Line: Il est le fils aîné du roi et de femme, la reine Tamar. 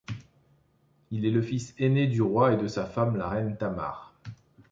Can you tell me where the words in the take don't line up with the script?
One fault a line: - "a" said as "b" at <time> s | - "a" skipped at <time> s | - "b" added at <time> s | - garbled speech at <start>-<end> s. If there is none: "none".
- "sa" added at 2.6 s